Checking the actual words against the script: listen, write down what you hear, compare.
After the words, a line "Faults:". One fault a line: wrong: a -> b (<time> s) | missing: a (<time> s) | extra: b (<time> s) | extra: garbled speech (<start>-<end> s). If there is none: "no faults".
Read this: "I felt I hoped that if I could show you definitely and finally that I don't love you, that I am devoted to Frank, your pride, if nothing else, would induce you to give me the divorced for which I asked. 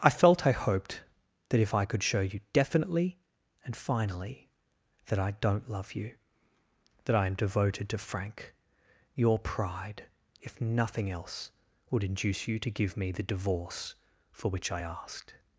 "I felt I hoped that if I could show you definitely and finally that I don't love you, that I am devoted to Frank, your pride, if nothing else, would induce you to give me the divorce for which I asked.
Faults:
wrong: divorced -> divorce (13.2 s)